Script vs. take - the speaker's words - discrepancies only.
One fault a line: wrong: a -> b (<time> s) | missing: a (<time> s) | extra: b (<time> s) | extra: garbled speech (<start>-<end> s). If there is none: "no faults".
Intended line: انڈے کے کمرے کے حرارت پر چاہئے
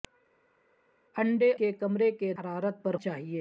no faults